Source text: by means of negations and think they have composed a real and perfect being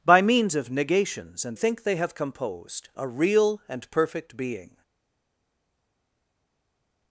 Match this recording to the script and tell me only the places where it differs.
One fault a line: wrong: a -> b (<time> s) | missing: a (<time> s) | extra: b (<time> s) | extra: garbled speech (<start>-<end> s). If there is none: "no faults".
no faults